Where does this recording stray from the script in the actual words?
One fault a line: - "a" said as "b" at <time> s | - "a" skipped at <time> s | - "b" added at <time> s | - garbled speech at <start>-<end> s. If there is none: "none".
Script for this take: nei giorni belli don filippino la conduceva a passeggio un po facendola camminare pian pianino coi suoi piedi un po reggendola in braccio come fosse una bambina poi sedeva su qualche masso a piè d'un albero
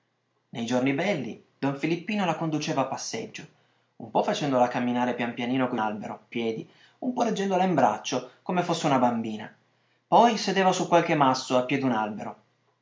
- "suoi" said as "albero" at 5.7 s